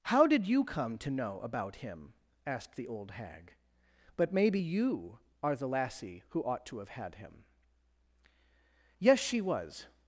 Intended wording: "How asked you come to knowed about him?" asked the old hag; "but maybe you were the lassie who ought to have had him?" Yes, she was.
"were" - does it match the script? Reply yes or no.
no